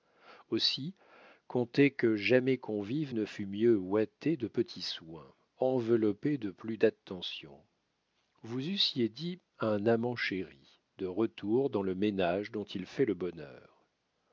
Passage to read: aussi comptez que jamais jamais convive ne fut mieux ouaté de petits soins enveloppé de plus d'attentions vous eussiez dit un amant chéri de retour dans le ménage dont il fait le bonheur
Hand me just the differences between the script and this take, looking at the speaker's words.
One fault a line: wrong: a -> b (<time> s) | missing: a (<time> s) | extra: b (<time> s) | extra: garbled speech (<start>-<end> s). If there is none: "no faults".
missing: jamais (2.6 s)